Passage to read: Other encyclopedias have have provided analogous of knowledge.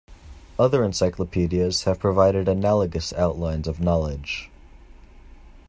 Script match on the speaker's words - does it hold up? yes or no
no